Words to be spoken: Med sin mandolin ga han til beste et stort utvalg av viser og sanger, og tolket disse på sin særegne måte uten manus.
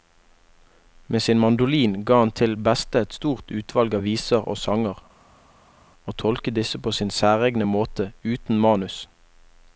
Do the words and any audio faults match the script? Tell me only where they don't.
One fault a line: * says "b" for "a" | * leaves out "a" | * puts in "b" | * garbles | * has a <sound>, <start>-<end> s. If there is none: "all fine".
all fine